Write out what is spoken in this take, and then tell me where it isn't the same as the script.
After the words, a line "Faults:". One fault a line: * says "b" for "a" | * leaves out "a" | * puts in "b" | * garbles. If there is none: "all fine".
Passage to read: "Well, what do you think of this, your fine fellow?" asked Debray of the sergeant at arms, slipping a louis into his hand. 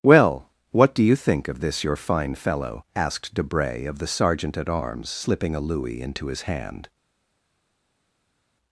"Well, what do you think of this, your fine fellow?" asked Debray of the sergeant at arms, slipping a louis into his hand.
Faults:
all fine